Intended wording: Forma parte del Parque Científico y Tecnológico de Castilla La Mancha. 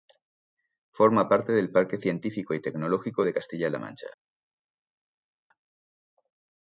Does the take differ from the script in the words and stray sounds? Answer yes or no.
no